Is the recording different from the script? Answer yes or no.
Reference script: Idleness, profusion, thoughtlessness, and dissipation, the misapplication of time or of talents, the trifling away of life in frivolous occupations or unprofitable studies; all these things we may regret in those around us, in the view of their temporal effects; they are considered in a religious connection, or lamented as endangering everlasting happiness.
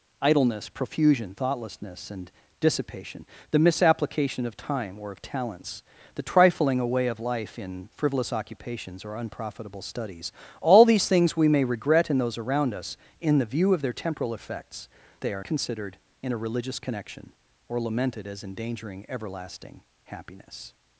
no